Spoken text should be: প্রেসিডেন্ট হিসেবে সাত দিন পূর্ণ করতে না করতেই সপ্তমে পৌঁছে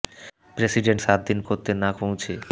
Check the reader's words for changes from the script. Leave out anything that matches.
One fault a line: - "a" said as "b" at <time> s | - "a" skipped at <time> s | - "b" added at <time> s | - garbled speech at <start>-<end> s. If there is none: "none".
- "হিসেবে" skipped at 1.0 s
- "পূর্ণ" skipped at 1.4 s
- "করতেই সপ্তমে" skipped at 1.9 s